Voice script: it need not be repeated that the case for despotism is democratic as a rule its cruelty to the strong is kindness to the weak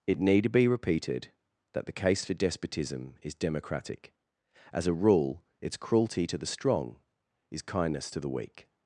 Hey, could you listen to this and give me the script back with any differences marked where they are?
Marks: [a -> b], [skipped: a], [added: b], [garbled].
it need [skipped: not] be repeated that the case for despotism is democratic as a rule its cruelty to the strong is kindness to the weak